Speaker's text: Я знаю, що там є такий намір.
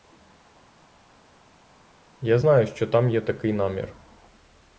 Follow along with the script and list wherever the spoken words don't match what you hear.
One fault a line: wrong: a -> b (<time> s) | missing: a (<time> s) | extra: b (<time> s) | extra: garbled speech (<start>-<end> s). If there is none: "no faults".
no faults